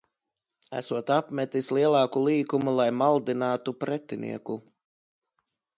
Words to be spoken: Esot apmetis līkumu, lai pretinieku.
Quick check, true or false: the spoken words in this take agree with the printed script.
false